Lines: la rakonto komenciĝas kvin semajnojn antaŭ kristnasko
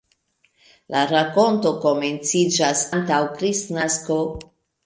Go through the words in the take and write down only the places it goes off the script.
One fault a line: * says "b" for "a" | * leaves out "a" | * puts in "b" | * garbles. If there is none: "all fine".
* leaves out "kvin semajnojn"